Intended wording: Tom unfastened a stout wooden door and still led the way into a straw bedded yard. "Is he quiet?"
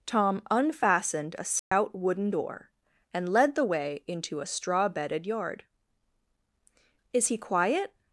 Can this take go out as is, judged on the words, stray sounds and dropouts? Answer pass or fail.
fail